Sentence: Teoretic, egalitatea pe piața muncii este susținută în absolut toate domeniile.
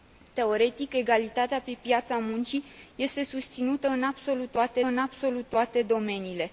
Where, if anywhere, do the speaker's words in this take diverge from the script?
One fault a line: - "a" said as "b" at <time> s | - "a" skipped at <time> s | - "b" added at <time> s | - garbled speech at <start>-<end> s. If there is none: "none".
- "în absolut toate" added at 4.8 s